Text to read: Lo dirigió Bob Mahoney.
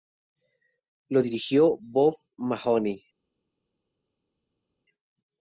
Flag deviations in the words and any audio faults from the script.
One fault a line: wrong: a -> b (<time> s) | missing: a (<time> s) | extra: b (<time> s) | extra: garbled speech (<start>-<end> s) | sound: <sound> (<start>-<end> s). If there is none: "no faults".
no faults